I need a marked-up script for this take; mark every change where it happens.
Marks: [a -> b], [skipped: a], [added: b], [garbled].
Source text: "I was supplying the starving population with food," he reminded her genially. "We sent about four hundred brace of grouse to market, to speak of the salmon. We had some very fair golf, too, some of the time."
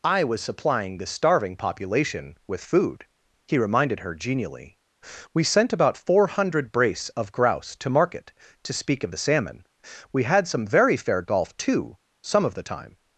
"I was supplying the starving population with food," he reminded her genially. "We sent about four hundred brace of grouse to market, to speak of the salmon. We had some very fair golf, too, some of the time."